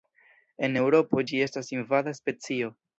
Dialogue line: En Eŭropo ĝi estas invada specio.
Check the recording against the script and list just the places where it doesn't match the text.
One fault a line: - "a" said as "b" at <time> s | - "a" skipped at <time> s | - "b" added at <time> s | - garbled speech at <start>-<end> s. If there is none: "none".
none